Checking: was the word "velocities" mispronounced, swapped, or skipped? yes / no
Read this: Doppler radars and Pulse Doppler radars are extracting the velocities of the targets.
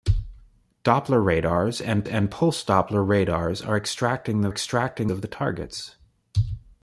yes